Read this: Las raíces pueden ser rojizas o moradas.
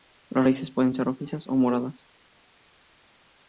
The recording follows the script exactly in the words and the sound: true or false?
true